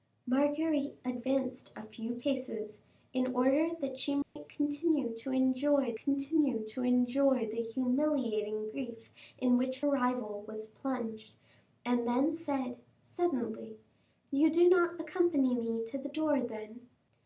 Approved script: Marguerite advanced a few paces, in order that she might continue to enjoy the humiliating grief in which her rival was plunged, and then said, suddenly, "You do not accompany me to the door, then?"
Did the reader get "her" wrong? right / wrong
wrong